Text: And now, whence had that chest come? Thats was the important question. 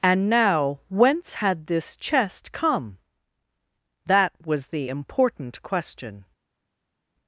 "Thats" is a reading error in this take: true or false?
true